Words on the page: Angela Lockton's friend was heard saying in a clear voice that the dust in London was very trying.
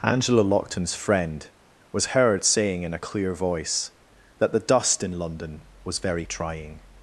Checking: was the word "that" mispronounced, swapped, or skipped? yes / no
no